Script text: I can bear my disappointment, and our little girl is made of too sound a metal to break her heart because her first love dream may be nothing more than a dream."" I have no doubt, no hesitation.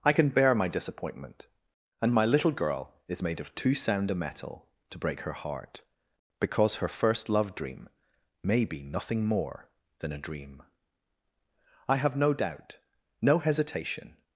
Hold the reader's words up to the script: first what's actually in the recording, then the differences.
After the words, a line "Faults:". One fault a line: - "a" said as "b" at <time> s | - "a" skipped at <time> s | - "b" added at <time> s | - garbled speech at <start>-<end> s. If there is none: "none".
I can bear my disappointment, and my little girl is made of too sound a metal to break her heart because her first love dream may be nothing more than a dream."" I have no doubt, no hesitation.
Faults:
- "our" said as "my" at 2.1 s